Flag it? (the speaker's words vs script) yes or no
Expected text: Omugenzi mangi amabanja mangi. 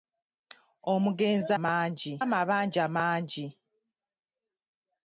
no